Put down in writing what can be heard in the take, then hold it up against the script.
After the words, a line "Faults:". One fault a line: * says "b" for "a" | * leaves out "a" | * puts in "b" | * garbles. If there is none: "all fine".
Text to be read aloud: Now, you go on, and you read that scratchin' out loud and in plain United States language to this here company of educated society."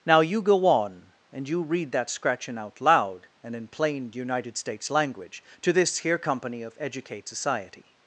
Now, you go on, and you read that scratchin' out loud and in plain United States language to this here company of educate society."
Faults:
* says "educate" for "educated"